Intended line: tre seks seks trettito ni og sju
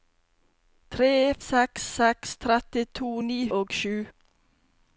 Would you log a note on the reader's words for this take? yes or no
no